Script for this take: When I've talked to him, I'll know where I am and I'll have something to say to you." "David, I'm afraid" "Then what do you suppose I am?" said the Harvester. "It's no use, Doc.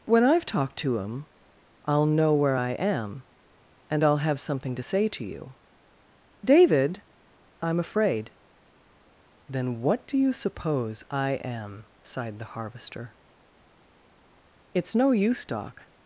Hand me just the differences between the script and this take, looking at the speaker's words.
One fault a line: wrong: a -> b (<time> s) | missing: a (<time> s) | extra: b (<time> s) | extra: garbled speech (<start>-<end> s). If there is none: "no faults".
wrong: said -> sighed (12.0 s)